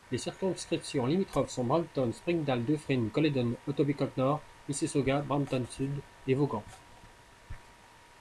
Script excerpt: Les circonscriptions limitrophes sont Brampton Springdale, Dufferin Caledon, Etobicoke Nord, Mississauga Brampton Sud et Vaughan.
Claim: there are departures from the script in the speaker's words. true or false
false